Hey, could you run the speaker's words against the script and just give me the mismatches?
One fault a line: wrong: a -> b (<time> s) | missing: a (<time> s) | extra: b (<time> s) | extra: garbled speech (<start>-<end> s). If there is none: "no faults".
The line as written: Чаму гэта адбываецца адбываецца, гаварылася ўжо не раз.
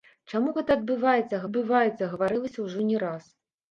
no faults